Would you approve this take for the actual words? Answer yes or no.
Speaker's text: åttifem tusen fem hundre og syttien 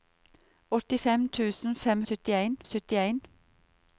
no